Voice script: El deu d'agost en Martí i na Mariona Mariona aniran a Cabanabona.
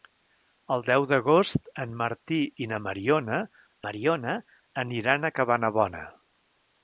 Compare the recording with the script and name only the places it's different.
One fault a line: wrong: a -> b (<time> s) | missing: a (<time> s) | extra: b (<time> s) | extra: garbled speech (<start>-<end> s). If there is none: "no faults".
no faults